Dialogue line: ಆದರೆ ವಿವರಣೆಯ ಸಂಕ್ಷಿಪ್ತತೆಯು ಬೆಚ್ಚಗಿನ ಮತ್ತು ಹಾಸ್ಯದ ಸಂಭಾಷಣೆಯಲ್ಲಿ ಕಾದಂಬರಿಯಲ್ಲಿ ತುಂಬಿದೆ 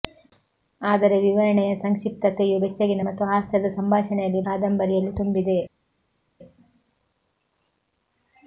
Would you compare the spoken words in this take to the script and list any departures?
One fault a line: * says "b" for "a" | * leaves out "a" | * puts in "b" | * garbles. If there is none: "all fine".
all fine